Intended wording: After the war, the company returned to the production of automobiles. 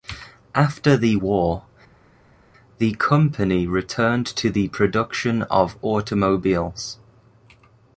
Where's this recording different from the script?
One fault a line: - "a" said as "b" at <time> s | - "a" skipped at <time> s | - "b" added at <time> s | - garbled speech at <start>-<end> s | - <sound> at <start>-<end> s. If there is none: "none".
none